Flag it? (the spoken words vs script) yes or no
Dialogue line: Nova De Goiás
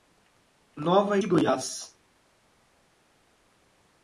no